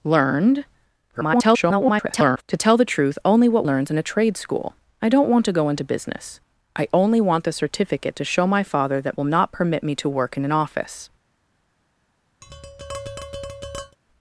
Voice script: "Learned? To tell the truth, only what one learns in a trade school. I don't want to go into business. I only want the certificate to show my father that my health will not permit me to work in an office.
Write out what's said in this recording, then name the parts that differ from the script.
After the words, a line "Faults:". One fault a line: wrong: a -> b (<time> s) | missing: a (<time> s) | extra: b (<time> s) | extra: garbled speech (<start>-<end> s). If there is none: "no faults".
"Learned? [garbled] To tell the truth, only what learns in a trade school. I don't want to go into business. I only want the certificate to show my father that will not permit me to work in an office.
Faults:
extra: garbled speech (1.1-2.4 s)
missing: one (3.6 s)
missing: my health (9.2 s)